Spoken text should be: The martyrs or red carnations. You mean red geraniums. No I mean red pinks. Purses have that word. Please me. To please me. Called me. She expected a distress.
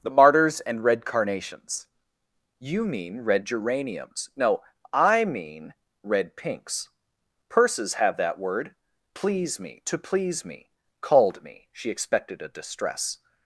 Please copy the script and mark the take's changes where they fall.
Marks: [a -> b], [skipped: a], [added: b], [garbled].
The martyrs [or -> and] red carnations. You mean red geraniums. No I mean red pinks. Purses have that word. Please me. To please me. Called me. She expected a distress.